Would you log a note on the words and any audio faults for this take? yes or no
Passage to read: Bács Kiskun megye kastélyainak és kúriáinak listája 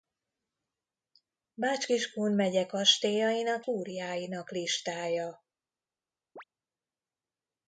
yes